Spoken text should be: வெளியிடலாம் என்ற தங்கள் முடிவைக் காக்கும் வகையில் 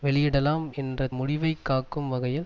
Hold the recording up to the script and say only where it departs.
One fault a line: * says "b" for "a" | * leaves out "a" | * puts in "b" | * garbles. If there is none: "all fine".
* leaves out "தங்கள்"